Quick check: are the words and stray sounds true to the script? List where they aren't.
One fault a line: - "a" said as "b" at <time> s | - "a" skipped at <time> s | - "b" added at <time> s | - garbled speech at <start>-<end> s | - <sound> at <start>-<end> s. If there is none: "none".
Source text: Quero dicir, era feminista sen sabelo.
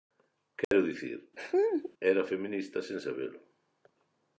- dropout at 0.6-0.7 s
- laugh at 1.4-1.9 s